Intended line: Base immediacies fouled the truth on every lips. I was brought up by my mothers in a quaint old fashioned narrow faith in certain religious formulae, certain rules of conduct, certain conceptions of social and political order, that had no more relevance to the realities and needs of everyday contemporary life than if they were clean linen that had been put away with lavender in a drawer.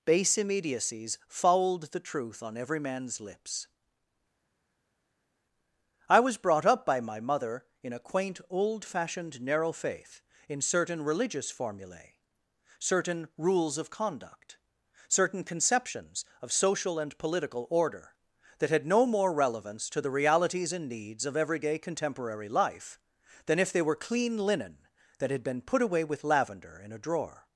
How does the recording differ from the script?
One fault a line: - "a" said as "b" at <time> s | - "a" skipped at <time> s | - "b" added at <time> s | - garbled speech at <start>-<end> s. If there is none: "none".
- "man's" added at 2.8 s
- "mothers" said as "mother" at 7.2 s